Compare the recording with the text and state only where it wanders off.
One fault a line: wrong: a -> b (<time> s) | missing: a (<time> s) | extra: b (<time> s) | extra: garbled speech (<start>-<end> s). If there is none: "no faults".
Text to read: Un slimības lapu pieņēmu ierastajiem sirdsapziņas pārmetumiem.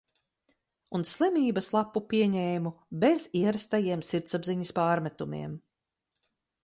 extra: bez (3.0 s)